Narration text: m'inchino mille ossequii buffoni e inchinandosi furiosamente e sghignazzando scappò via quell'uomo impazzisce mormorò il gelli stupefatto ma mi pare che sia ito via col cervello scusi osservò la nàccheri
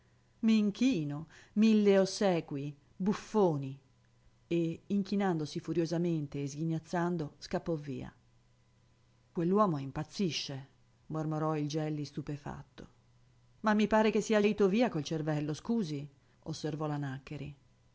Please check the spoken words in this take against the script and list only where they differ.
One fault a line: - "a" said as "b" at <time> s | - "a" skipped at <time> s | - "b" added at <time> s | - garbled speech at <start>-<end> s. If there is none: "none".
none